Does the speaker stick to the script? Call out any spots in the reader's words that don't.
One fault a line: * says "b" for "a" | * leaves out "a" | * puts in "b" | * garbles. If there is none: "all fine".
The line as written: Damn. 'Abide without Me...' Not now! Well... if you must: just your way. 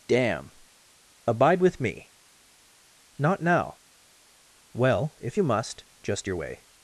* says "with" for "without"